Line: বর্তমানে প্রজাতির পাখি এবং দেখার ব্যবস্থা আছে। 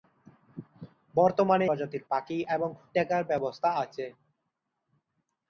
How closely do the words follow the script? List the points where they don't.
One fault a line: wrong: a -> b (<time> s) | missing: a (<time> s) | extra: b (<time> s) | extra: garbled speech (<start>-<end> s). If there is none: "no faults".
no faults